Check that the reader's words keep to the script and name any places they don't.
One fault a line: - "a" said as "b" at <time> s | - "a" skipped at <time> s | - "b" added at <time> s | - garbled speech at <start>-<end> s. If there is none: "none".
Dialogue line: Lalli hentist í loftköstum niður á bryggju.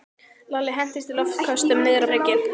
none